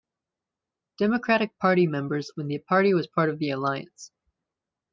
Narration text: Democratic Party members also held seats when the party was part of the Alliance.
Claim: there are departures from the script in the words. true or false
true